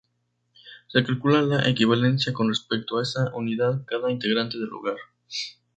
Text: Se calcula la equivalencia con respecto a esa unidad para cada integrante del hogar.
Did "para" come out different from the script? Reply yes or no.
yes